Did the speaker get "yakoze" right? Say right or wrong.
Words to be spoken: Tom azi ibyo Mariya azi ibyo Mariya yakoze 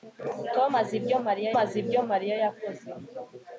right